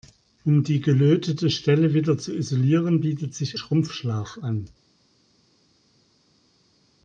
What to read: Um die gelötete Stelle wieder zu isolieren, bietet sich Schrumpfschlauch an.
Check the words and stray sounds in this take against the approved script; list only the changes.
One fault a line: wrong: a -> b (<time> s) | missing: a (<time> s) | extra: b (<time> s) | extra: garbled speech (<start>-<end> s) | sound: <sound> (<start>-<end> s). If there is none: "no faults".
no faults